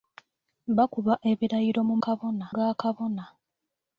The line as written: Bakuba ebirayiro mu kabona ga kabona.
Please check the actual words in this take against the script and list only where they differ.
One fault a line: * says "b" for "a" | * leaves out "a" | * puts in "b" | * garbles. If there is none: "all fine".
all fine